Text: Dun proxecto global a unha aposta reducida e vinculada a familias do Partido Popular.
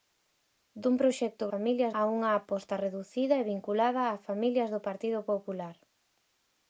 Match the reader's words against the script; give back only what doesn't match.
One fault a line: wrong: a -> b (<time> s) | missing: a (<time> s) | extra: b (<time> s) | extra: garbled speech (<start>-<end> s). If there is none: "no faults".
wrong: global -> familias (1.5 s)